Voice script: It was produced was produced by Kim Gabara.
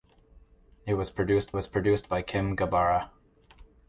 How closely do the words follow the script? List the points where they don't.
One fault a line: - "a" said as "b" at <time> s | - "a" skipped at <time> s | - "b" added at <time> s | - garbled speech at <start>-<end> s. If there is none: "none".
none